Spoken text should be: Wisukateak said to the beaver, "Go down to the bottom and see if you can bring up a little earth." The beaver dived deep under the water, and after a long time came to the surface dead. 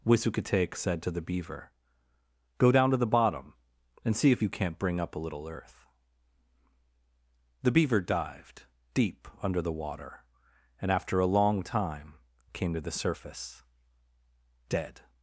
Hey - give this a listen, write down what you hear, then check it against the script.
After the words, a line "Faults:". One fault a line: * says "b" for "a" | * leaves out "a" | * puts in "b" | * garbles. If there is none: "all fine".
Wisukateak said to the beaver, "Go down to the bottom and see if you can't bring up a little earth." The beaver dived deep under the water, and after a long time came to the surface dead.
Faults:
* says "can't" for "can"